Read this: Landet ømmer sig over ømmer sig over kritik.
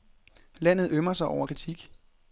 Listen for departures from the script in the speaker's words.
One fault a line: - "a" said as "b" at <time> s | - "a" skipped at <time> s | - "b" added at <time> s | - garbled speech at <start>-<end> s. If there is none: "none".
- "ømmer sig over" skipped at 1.5 s